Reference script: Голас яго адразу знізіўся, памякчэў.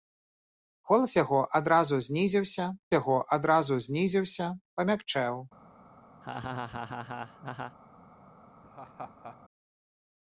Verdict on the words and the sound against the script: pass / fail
fail